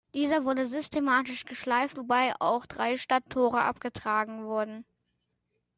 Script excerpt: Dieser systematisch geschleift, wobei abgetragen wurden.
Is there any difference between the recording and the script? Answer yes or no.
yes